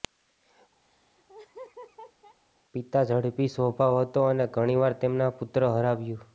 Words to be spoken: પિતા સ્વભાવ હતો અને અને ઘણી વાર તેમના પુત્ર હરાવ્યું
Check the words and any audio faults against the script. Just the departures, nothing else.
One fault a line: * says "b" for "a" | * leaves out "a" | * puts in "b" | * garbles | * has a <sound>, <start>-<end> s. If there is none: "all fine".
* has a laugh, 0.8-2.4 s
* puts in "ઝડપી"
* leaves out "અને"